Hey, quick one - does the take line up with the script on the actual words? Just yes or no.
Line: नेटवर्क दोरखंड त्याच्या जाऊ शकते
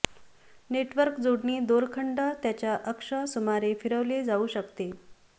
no